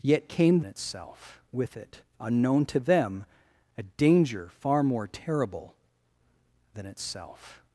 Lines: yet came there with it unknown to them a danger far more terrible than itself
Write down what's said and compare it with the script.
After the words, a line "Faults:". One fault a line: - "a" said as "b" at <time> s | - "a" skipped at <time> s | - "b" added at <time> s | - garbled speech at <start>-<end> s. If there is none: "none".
yet came itself with it unknown to them a danger far more terrible than itself
Faults:
- "there" said as "itself" at 0.6 s